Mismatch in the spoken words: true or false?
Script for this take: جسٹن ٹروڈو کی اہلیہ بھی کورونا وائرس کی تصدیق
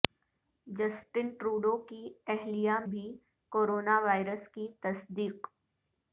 false